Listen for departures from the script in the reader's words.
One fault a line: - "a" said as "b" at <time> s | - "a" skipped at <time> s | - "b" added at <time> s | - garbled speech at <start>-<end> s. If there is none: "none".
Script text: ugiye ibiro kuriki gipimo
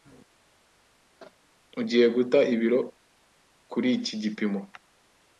- "guta" added at 2.1 s